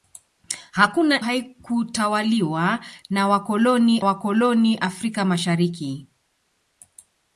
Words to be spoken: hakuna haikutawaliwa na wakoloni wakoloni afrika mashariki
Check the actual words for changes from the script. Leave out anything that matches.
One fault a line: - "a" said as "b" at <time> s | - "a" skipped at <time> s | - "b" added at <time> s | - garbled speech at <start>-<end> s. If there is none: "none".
none